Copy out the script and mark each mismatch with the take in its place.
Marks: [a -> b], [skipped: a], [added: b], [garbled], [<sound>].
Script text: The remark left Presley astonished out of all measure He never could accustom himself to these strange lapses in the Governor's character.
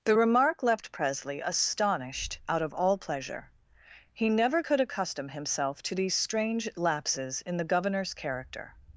The remark left Presley astonished out of all [measure -> pleasure] He never could accustom himself to these strange lapses in the Governor's character.